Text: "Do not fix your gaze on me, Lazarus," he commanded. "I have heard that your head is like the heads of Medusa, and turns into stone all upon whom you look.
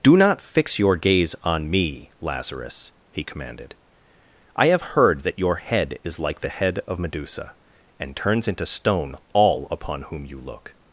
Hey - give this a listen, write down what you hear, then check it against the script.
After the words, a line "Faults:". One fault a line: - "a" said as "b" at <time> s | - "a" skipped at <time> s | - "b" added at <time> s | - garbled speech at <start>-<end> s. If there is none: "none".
"Do not fix your gaze on me, Lazarus," he commanded. "I have heard that your head is like the head of Medusa, and turns into stone all upon whom you look.
Faults:
- "heads" said as "head" at 6.5 s